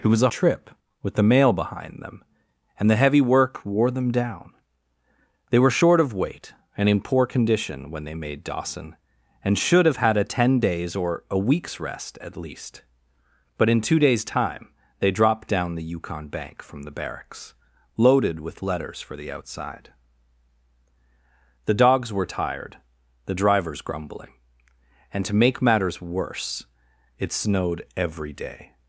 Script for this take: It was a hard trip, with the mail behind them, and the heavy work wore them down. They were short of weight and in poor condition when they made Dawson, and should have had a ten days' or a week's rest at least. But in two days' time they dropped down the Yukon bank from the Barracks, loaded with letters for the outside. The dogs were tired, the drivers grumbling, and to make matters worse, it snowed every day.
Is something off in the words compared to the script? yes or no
yes